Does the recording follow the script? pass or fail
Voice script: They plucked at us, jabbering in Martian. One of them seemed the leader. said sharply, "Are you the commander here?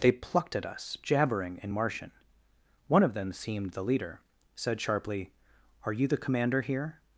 pass